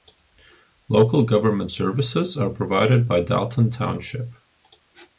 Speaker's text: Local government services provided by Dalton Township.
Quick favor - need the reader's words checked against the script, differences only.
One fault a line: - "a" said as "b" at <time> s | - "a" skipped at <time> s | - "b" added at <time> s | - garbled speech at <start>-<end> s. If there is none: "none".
- "are" added at 2.4 s